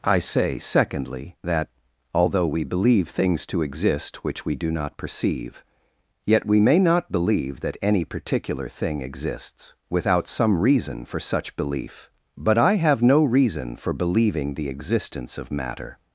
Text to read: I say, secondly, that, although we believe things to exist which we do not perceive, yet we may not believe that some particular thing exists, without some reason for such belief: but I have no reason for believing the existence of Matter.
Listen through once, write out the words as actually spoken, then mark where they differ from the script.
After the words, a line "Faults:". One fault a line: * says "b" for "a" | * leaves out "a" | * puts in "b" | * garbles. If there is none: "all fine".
I say, secondly, that, although we believe things to exist which we do not perceive, yet we may not believe that any particular thing exists, without some reason for such belief: but I have no reason for believing the existence of Matter.
Faults:
* says "any" for "some"